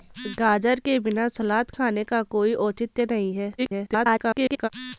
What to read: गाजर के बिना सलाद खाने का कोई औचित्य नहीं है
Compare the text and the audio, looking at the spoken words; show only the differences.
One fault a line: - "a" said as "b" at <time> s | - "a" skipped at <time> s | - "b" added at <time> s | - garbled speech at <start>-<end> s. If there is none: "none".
- garbled speech at 3.6-4.7 s